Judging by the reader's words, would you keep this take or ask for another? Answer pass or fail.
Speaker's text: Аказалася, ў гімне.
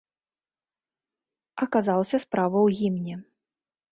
fail